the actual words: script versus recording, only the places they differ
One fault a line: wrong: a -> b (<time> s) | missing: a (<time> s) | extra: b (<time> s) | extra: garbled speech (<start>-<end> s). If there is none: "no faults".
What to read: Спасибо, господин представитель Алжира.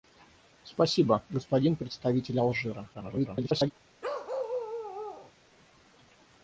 extra: garbled speech (2.9-3.7 s)